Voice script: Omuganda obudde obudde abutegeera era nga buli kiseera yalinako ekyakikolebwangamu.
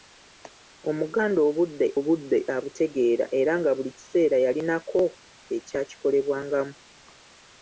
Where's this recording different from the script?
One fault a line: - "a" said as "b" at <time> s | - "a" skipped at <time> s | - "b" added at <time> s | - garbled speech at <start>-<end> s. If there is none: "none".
none